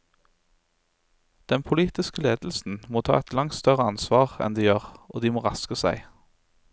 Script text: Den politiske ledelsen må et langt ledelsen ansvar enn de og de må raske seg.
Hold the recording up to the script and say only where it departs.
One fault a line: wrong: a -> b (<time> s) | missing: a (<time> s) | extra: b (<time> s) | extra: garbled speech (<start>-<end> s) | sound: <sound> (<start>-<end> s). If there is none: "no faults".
extra: ta (3.0 s)
wrong: ledelsen -> større (3.6 s)
extra: gjør (4.7 s)